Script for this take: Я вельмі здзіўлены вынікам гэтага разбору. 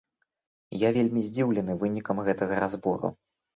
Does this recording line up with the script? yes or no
yes